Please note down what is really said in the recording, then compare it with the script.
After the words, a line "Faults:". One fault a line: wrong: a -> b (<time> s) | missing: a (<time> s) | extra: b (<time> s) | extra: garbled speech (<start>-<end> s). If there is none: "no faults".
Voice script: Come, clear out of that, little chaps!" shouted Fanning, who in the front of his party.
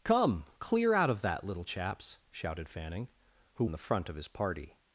Come, clear out of that, little chaps!" shouted Fanning, who in the front of his party.
Faults:
no faults